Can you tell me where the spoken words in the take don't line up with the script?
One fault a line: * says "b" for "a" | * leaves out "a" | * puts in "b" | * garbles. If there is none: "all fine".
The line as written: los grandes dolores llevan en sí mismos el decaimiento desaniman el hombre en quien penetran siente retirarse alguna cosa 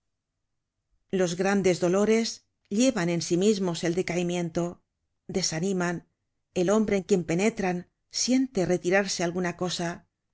all fine